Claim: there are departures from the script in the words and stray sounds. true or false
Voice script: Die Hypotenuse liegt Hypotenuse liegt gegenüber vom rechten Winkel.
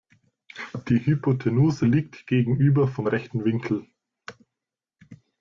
true